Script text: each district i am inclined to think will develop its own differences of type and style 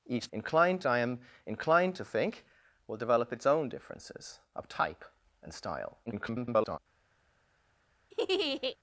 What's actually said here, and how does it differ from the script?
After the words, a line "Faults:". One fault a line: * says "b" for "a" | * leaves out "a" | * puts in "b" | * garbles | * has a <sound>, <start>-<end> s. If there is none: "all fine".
each inclined i am inclined to think will develop its own differences of type and style [garbled]
Faults:
* says "inclined" for "district"
* garbles
* has a laugh, 8.1-8.8 s